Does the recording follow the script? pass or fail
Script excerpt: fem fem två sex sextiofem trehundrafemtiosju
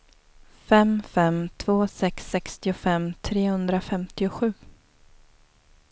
pass